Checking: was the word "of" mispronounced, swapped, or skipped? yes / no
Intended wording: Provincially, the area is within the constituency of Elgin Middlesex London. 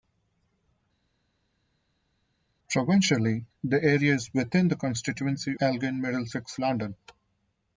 yes